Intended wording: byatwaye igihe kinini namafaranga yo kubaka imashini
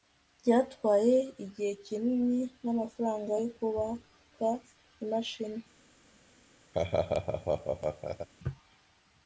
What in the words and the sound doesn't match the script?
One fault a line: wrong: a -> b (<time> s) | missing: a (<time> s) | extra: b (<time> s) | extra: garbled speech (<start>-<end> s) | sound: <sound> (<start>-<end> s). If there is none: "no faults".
sound: laugh (6.7-8.3 s)